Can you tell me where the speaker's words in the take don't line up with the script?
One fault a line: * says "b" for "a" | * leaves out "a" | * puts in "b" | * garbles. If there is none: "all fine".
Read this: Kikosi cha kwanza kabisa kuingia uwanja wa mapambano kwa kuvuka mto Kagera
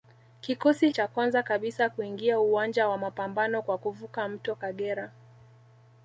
all fine